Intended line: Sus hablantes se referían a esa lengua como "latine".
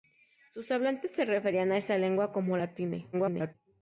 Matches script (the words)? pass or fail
fail